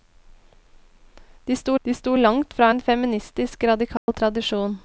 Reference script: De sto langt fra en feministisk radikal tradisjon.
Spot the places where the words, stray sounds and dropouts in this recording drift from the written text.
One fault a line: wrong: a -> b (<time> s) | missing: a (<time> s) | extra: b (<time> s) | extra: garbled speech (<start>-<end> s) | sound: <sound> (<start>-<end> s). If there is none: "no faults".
extra: de sto (1.8 s)
sound: dropout (4.0-4.1 s)